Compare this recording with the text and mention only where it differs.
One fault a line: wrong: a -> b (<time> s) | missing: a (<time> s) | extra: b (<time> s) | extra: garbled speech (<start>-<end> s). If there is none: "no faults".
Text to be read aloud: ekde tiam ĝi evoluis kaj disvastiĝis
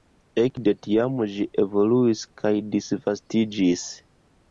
no faults